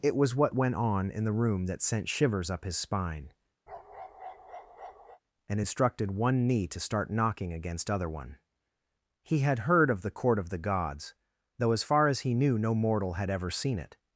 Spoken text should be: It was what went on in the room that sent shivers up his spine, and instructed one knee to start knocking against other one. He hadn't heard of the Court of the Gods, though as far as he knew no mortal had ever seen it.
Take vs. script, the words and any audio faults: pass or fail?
fail